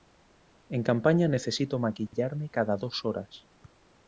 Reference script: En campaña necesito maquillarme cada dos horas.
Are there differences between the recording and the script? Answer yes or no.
no